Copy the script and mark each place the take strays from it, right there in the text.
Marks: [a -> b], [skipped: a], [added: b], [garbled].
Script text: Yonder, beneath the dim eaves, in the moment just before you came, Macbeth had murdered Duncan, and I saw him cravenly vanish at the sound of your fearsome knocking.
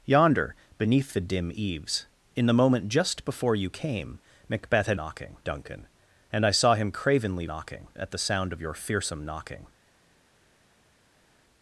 Yonder, beneath the dim eaves, in the moment just before you came, Macbeth had [murdered -> knocking] Duncan, and I saw him cravenly [vanish -> knocking] at the sound of your fearsome knocking.